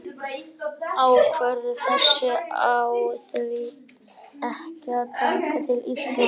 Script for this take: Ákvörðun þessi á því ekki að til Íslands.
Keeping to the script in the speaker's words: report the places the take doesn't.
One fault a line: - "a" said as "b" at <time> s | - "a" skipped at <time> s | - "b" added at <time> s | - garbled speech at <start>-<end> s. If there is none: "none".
- "taka" added at 5.2 s